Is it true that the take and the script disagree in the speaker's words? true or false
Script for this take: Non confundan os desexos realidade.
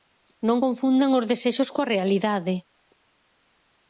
true